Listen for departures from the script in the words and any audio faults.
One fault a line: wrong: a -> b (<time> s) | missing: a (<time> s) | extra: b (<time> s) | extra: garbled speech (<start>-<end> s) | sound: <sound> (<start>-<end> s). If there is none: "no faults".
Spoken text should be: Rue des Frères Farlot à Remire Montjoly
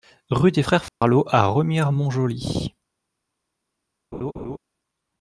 sound: dropout (0.9-1.0 s)
sound: laugh (4.1-4.6 s)